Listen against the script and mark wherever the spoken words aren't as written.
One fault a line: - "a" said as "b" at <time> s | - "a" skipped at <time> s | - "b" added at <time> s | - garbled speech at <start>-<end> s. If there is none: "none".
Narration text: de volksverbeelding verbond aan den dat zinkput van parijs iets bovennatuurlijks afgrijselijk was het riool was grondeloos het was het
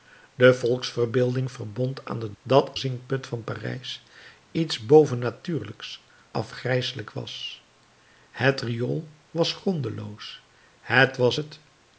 none